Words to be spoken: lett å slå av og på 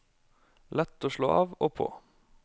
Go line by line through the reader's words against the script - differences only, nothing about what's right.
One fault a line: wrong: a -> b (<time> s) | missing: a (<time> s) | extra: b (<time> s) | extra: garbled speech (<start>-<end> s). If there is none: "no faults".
no faults